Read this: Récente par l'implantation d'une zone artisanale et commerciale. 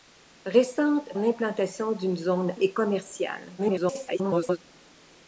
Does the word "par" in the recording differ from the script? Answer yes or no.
yes